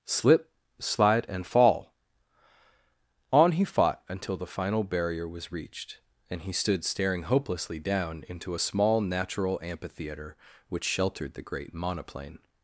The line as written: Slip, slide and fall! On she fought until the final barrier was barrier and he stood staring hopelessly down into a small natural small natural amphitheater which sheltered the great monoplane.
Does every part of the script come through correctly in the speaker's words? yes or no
no